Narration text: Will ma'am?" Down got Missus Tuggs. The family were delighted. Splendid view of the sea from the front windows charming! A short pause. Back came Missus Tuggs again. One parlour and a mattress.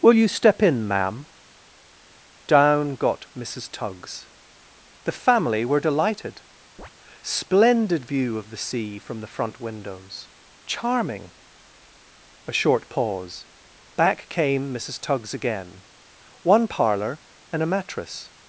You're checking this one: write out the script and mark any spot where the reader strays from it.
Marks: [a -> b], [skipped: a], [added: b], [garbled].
Will [added: you step in] ma'am?" Down got Missus Tuggs. The family were delighted. Splendid view of the sea from the front windows charming! A short pause. Back came Missus Tuggs again. One parlour and a mattress.